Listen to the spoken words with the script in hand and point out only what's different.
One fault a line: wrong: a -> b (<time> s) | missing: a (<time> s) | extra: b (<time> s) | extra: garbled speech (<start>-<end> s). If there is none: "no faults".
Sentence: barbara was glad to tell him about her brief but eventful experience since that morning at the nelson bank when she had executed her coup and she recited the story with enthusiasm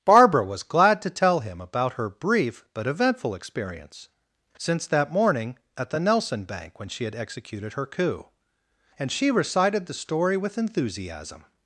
no faults